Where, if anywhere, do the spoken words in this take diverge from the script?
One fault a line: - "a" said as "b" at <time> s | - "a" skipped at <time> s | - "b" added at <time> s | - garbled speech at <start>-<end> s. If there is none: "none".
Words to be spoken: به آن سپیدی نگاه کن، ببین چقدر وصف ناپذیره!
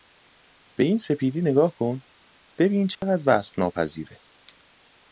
- "آن" said as "این" at 0.8 s